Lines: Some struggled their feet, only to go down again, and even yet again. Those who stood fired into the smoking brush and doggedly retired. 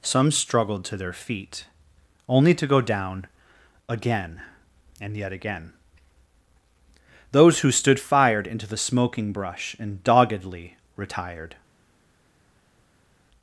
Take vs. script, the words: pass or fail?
fail